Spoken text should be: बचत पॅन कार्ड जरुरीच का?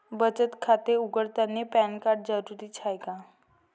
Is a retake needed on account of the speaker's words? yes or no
yes